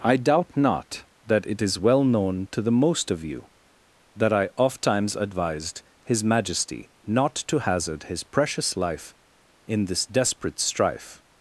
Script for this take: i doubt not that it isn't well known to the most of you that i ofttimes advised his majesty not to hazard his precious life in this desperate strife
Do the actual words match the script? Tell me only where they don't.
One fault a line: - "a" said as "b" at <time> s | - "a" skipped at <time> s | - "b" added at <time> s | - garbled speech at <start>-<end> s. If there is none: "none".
- "isn't" said as "is" at 1.6 s